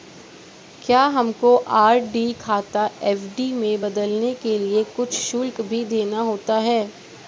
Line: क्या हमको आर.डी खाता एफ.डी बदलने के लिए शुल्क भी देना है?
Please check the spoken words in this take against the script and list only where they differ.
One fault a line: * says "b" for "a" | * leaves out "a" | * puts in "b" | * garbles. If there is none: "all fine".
* puts in "में"
* puts in "कुछ"
* puts in "होता"